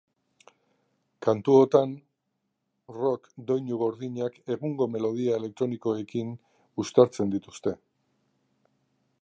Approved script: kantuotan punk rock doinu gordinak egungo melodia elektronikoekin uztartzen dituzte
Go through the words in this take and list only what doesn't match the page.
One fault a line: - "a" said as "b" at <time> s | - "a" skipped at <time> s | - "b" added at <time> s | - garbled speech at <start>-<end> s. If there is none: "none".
- "punk" skipped at 1.9 s